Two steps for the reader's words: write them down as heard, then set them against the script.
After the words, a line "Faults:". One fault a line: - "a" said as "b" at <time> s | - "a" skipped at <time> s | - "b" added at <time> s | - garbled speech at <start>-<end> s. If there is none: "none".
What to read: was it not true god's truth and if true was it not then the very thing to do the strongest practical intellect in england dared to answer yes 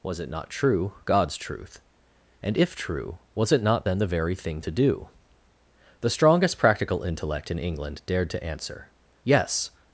was it not true god's truth and if true was it not then the very thing to do the strongest practical intellect in england dared to answer yes
Faults:
none